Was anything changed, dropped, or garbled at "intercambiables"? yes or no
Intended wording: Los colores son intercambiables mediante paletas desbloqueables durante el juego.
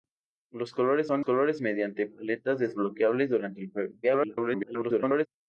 yes